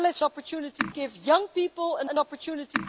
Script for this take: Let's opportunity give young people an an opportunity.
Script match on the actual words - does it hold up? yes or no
yes